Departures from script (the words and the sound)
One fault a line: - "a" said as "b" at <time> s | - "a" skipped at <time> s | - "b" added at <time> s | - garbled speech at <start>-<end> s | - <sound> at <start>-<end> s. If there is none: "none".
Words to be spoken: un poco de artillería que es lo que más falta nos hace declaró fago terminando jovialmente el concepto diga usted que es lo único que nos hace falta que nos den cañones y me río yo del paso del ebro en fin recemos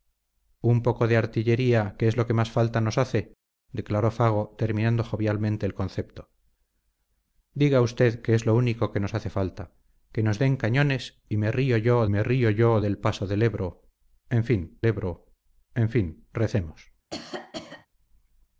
- "me río yo" added at 12.1 s
- "ebro en fin" added at 14.9 s
- cough at 17.1-17.9 s